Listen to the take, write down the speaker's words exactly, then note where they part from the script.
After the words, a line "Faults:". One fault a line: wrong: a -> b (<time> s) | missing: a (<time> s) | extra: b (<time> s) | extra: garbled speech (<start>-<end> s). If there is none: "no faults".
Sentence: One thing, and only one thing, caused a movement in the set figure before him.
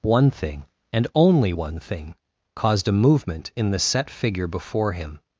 One thing, and only one thing, caused a movement in the set figure before him.
Faults:
no faults